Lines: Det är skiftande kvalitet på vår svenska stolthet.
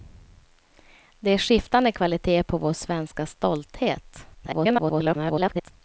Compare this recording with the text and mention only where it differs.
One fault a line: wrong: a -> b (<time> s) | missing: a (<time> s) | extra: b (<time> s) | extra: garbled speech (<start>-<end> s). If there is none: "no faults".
extra: garbled speech (4.3-5.7 s)